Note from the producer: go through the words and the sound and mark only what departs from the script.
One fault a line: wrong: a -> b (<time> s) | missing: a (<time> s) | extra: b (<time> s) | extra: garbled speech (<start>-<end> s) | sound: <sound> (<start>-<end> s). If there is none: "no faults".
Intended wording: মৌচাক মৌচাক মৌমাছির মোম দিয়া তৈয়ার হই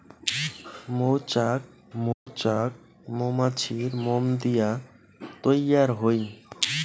sound: dropout (2.1-2.3 s)